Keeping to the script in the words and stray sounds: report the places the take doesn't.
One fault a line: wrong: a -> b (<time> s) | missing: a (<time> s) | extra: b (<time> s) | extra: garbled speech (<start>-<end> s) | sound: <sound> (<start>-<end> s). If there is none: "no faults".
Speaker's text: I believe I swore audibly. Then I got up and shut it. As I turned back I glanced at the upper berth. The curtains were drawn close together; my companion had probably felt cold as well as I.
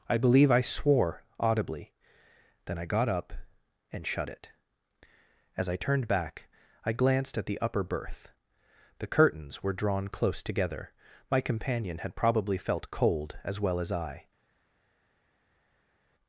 no faults